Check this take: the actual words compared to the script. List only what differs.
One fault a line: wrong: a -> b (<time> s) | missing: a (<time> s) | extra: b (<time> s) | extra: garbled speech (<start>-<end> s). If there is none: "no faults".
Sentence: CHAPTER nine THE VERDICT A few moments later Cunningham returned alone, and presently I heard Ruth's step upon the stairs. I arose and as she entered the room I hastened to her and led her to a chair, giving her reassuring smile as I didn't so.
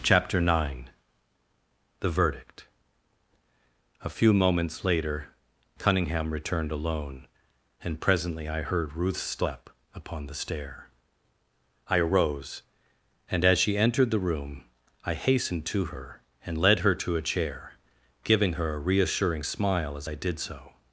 wrong: stairs -> stair (10.3 s)
extra: a (18.7 s)
wrong: didn't -> did (20.1 s)